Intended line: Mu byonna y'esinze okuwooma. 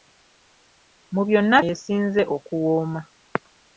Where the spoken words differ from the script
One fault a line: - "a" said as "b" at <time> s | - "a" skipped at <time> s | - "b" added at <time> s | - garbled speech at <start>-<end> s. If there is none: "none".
none